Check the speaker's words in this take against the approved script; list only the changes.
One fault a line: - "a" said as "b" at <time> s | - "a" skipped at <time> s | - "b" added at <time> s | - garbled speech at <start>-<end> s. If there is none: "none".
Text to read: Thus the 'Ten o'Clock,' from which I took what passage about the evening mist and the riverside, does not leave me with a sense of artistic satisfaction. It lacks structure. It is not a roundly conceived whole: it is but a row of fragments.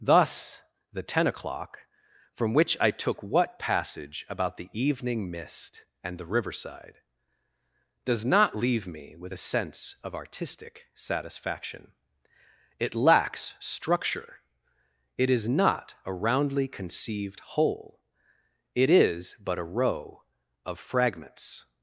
none